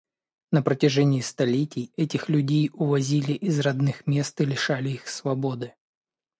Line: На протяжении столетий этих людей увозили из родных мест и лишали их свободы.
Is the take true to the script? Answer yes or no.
yes